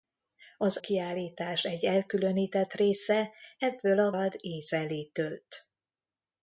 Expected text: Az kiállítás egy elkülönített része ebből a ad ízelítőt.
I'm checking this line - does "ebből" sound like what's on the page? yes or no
yes